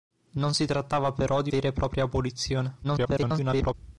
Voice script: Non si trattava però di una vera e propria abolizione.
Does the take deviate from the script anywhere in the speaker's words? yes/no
yes